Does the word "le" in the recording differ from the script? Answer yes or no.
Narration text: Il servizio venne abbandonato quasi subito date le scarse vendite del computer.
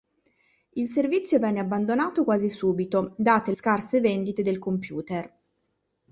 yes